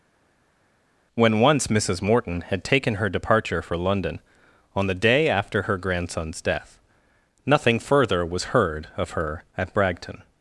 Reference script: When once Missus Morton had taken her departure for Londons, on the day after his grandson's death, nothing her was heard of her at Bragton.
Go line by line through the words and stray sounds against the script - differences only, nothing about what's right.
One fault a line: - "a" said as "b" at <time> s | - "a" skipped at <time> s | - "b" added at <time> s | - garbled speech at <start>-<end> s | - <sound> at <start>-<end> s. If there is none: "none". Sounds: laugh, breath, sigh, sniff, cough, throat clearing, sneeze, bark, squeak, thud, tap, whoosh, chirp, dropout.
- "Londons" said as "London" at 3.8 s
- "his" said as "her" at 5.6 s
- "her" said as "further" at 7.8 s